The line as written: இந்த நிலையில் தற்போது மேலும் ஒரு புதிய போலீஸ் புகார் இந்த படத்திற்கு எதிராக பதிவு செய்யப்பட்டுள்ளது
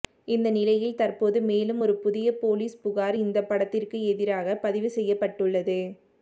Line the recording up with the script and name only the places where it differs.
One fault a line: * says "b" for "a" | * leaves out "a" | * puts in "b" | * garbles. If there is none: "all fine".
all fine